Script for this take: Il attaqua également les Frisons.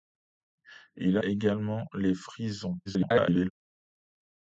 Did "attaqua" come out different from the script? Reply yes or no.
yes